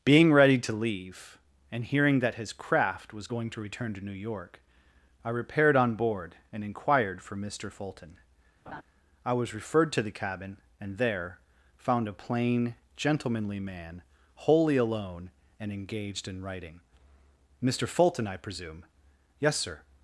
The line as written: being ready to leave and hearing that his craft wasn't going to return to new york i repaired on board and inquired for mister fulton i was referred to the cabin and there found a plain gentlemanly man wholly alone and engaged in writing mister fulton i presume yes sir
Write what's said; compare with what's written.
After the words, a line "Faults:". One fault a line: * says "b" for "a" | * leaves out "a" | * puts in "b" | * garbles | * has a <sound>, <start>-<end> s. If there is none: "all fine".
being ready to leave and hearing that his craft was going to return to new york i repaired on board and inquired for mister fulton i was referred to the cabin and there found a plain gentlemanly man wholly alone and engaged in writing mister fulton i presume yes sir
Faults:
* says "was" for "wasn't"
* has a laugh, 8.7-8.8 s